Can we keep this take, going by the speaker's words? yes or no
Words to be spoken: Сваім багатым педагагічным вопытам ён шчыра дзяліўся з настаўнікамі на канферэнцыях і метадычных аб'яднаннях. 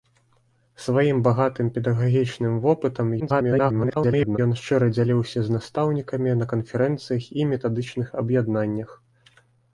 no